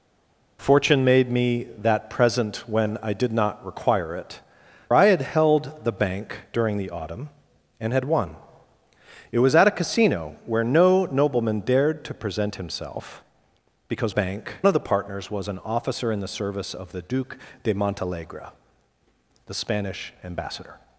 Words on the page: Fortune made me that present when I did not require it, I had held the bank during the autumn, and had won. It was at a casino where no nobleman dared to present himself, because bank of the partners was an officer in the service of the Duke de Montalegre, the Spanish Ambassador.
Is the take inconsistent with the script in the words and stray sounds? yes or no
no